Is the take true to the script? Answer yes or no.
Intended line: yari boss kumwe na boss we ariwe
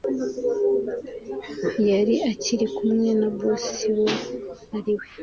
no